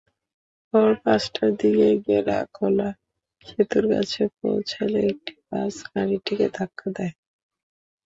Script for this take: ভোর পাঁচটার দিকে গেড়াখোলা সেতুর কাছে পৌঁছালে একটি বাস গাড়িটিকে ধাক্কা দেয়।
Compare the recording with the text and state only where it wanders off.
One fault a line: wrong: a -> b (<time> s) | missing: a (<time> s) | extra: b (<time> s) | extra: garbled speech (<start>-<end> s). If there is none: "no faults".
no faults